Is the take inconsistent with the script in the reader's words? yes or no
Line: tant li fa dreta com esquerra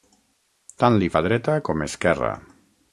no